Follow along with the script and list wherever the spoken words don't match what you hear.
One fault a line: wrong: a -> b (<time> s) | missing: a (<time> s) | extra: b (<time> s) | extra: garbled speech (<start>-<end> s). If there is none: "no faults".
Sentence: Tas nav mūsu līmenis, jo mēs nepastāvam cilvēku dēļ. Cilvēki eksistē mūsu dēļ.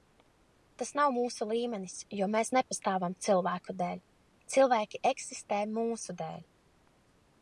no faults